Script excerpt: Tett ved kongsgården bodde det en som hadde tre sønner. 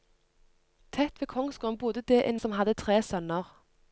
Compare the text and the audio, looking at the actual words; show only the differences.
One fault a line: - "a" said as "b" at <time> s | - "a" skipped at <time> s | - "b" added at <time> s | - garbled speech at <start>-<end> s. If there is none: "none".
none